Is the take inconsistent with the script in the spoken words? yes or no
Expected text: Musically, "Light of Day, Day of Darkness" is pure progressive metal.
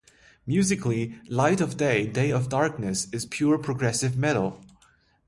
no